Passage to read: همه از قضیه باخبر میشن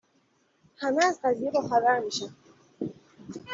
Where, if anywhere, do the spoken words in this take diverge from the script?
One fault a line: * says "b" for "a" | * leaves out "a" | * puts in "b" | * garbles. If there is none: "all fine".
all fine